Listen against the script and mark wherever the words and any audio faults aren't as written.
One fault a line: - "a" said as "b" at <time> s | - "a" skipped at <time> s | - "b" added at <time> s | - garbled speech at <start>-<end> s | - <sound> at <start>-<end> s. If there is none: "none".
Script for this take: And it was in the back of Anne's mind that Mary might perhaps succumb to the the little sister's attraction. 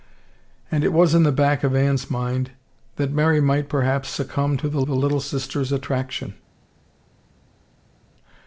none